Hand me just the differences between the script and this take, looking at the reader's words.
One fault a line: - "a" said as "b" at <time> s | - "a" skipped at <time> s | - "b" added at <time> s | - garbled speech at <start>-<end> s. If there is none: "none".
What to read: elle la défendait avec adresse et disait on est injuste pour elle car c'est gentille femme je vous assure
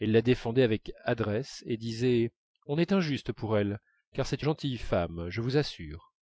none